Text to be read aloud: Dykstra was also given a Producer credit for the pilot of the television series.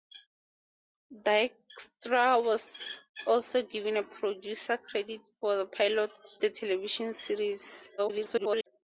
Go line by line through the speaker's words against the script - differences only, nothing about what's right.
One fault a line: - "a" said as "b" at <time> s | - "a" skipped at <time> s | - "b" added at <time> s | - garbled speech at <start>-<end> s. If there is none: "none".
- "of" skipped at 6.1 s
- garbled speech at 8.0-8.7 s